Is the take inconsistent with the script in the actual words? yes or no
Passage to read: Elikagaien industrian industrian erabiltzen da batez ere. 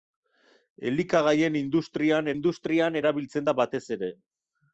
no